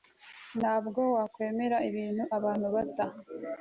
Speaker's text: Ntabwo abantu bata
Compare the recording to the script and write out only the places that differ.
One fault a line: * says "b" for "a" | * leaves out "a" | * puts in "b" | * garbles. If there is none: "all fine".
* puts in "wakwemera ibintu"